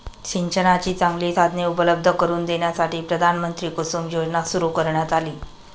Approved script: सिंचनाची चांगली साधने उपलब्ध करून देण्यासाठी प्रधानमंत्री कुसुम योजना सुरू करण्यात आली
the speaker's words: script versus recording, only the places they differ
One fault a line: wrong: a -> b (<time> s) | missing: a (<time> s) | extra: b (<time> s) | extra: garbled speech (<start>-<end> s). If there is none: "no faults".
no faults